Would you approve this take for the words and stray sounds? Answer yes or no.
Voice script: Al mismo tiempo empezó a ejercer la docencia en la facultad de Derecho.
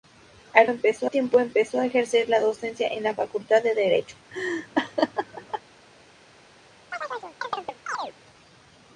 no